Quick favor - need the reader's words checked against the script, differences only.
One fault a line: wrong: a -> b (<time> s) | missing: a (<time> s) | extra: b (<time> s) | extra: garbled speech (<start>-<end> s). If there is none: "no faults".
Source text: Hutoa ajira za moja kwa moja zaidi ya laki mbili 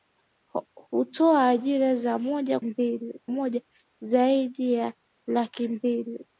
wrong: kwa -> mbili (2.6 s)